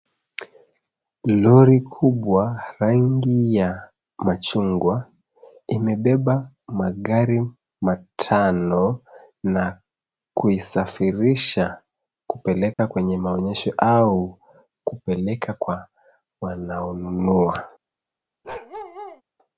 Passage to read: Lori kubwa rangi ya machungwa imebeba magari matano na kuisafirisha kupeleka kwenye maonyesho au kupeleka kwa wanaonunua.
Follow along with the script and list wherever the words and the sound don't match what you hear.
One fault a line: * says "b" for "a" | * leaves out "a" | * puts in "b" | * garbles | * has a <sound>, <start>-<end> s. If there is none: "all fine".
* has a dropout, 12.7-12.8 s
* has a bark, 18.4-19.2 s